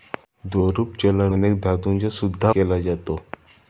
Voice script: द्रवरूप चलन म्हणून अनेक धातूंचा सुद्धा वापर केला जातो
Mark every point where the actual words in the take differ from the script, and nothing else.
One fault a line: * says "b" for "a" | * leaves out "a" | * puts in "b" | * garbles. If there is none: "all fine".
* leaves out "म्हणून"
* leaves out "वापर"